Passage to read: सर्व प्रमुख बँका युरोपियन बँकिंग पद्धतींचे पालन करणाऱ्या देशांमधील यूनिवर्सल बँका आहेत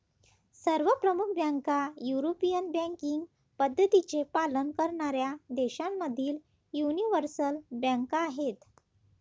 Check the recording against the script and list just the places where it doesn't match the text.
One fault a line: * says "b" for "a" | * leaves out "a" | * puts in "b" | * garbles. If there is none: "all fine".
all fine